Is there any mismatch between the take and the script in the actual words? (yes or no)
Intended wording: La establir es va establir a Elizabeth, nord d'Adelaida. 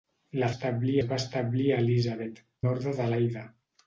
no